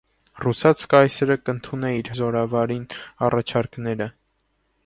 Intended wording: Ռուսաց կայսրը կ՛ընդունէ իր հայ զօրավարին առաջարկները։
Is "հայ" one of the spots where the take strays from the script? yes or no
yes